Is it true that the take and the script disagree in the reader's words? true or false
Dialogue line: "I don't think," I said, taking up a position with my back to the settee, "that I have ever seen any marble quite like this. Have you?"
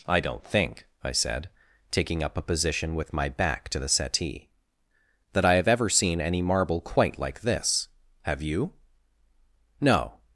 true